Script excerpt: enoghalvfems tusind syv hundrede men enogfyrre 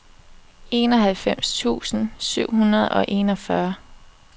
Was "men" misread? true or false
true